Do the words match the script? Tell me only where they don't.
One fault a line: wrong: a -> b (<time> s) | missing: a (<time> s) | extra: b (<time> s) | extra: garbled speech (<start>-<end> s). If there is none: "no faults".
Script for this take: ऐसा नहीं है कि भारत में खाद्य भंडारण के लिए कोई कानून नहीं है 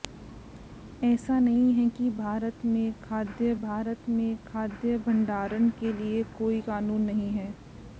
extra: भारत में खाद्य (3.6 s)